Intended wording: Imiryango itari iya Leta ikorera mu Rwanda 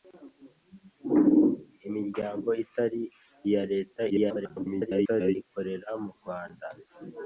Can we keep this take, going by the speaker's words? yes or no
no